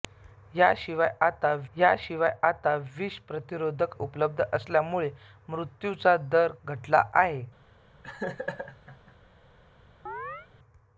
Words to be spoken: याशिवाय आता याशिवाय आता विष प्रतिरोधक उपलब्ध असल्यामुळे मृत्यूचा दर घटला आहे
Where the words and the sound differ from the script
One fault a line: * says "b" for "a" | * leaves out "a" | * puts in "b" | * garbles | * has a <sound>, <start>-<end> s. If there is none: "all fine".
* has a laugh, 8.0-9.2 s
* has a chirp, 10.1-10.5 s